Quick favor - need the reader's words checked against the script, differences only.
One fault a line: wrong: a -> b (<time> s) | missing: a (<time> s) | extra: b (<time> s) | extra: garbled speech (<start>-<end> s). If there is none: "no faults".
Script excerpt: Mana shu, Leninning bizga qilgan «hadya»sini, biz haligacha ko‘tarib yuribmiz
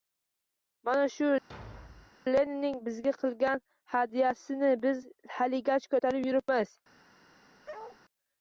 no faults